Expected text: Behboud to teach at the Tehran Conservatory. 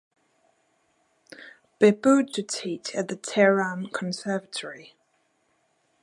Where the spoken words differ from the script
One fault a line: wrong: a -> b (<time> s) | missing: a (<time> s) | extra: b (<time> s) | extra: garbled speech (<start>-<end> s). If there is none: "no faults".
no faults